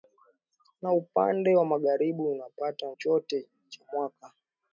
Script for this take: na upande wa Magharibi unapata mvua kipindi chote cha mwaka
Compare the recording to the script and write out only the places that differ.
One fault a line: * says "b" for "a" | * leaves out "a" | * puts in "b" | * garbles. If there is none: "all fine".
* leaves out "mvua kipindi"